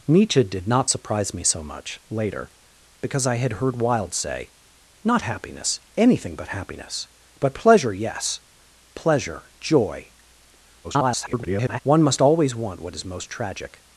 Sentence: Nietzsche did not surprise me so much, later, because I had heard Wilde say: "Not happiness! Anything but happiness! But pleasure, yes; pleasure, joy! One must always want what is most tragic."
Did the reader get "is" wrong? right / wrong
right